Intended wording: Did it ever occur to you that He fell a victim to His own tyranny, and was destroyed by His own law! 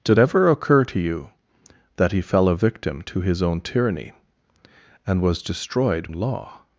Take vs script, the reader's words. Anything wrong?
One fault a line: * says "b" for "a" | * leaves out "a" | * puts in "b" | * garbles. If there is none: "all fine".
* leaves out "it"
* leaves out "by His own"